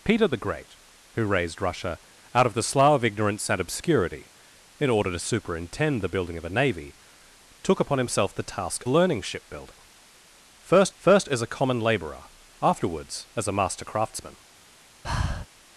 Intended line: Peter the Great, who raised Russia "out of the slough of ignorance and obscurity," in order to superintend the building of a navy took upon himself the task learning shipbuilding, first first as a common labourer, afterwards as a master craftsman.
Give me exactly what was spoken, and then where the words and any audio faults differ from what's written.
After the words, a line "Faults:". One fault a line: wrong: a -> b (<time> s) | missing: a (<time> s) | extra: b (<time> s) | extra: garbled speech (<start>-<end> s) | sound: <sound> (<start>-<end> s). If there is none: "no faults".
Peter the Great, who raised Russia "out of the slough of ignorance and obscurity," in order to superintend the building of a navy took upon himself the task learning shipbuilding, first first as a common labourer, afterwards as a master craftsman.
Faults:
sound: breath (15.0-15.5 s)